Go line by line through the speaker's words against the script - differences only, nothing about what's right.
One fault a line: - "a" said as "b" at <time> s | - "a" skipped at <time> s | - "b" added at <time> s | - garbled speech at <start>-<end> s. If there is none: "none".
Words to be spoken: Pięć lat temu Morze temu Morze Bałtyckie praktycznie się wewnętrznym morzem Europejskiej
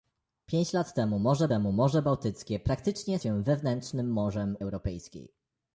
none